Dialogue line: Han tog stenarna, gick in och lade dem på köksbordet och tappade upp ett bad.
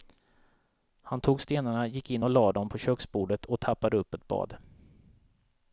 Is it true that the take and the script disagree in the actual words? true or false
false